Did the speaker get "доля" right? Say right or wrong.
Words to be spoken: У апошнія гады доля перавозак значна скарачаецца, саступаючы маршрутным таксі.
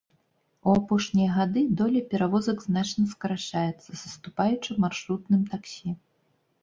right